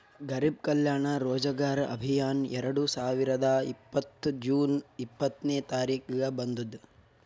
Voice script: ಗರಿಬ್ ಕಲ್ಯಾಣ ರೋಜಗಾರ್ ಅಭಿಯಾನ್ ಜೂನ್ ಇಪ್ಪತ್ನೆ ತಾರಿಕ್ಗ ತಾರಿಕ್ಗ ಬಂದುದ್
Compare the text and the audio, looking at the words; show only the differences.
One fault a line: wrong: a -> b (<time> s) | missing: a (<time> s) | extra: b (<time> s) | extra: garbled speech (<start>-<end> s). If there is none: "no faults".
extra: ಎರಡು ಸಾವಿರದ ಇಪ್ಪತ್ತ್ (2.6 s)
missing: ತಾರಿಕ್ಗ (6.3 s)